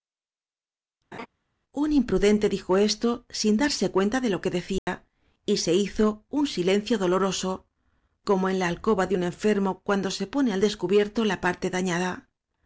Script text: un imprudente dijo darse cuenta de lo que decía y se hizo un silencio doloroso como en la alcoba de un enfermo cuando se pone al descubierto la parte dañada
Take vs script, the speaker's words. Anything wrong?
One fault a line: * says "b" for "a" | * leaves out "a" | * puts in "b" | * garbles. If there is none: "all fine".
* puts in "esto sin"